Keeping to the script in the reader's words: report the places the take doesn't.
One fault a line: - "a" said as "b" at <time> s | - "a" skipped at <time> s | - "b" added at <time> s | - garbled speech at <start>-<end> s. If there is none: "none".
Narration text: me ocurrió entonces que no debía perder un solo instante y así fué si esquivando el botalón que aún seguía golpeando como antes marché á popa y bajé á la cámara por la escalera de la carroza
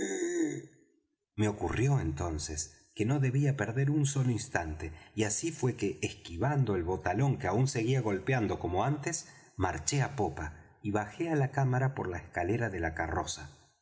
- "si" said as "que" at 5.8 s